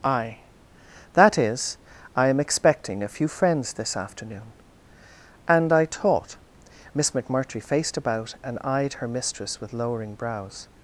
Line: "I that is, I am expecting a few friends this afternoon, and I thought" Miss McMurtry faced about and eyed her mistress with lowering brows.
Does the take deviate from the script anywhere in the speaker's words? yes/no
yes